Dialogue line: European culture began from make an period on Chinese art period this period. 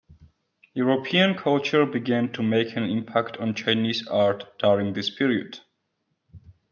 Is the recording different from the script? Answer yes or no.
yes